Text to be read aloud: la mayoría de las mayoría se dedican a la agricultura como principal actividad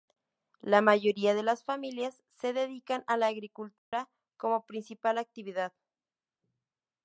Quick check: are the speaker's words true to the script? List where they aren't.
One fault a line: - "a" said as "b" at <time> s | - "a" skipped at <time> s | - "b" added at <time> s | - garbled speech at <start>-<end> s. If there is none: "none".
- "mayoría" said as "familias" at 1.6 s